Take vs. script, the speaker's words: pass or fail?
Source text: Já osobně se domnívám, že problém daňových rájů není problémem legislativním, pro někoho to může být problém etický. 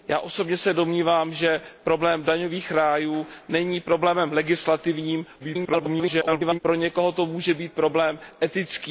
fail